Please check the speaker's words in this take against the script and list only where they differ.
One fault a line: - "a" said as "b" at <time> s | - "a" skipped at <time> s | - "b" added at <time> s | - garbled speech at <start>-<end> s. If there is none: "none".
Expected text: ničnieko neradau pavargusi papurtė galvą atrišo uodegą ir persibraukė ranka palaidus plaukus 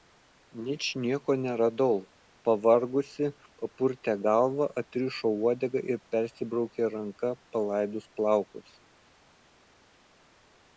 none